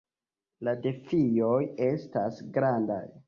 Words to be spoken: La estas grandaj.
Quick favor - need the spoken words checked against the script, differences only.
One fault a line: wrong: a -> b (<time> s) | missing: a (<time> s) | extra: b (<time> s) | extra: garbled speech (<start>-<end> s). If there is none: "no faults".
extra: defioj (0.8 s)